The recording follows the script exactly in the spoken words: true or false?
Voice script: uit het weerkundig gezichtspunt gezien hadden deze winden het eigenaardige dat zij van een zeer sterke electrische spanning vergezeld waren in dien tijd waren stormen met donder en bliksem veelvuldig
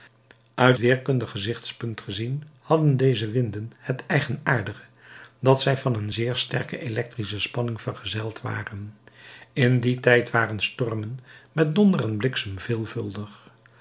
false